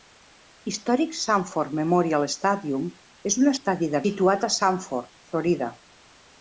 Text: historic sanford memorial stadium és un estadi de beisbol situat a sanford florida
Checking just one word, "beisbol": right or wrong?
wrong